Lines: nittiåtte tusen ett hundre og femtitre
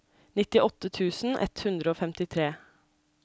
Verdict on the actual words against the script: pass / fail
pass